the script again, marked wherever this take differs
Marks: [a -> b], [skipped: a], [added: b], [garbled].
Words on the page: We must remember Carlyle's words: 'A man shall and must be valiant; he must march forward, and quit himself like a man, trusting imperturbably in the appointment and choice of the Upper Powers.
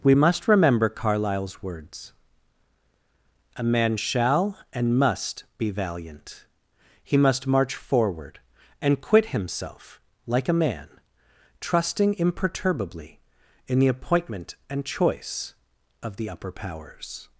We must remember Carlyle's words: 'A man shall and must be valiant; he must march forward, and quit himself like a man, trusting imperturbably in the appointment and choice of the Upper Powers.